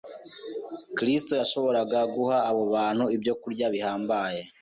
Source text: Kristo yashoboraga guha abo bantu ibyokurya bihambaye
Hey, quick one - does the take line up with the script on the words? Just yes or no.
yes